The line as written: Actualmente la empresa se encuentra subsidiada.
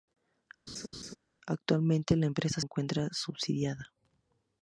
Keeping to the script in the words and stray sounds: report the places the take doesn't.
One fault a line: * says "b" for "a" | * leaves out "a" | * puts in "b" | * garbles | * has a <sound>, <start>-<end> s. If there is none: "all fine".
* has a laugh, 0.7-1.2 s
* leaves out "se"